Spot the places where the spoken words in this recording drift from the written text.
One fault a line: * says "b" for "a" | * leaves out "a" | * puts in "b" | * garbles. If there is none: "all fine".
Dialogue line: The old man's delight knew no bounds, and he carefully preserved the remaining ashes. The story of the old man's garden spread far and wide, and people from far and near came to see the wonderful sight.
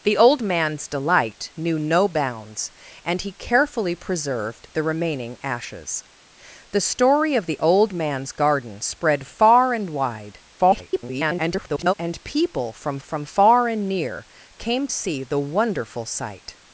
* garbles
* puts in "from"
* leaves out "to"